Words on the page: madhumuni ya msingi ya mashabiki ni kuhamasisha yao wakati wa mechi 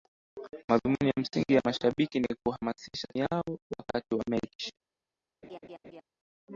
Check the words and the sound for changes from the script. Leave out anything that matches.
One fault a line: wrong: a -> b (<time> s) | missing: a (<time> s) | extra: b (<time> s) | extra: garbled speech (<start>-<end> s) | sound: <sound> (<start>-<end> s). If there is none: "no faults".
sound: laugh (5.4-6.0 s)